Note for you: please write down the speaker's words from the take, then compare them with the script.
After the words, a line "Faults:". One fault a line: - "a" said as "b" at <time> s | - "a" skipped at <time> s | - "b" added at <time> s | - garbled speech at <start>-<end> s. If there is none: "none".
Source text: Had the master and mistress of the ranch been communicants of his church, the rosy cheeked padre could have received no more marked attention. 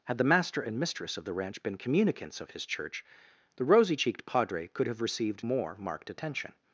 Had the master and mistress of the ranch been communicants of his church, the rosy cheeked padre could have received more marked attention.
Faults:
- "no" skipped at 5.4 s